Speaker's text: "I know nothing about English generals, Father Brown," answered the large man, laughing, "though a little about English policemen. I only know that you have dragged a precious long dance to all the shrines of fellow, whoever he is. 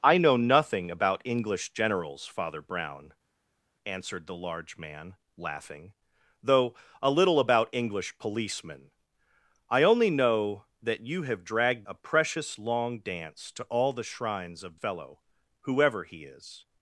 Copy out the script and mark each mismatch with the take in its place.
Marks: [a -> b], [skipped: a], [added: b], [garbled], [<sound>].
"I know nothing about English generals, Father Brown," answered the large man, laughing, "though a little about English policemen. I only know that you have dragged a precious long dance to all the shrines of fellow, whoever he is.